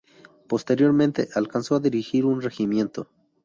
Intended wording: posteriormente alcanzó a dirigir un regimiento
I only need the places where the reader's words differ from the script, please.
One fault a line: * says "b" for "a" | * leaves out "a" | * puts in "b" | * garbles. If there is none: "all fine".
all fine